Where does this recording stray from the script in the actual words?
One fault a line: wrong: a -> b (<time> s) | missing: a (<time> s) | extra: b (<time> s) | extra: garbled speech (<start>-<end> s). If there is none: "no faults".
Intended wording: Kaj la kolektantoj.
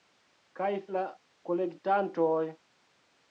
no faults